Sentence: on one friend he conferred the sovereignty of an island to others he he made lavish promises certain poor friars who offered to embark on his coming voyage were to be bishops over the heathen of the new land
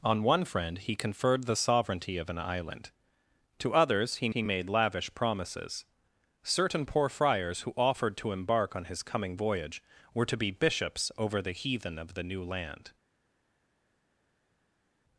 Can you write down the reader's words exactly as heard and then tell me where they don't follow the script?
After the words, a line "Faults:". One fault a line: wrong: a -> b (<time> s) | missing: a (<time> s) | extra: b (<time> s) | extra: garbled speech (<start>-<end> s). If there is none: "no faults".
on one friend he conferred the sovereignty of an island to others he he made lavish promises certain poor friars who offered to embark on his coming voyage were to be bishops over the heathen of the new land
Faults:
no faults